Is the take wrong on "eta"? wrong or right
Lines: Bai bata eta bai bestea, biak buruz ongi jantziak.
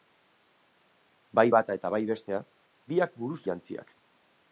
right